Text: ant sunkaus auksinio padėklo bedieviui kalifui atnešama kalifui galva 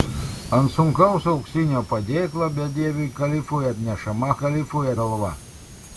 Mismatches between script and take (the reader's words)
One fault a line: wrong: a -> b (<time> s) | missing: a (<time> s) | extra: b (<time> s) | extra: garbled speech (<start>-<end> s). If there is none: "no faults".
no faults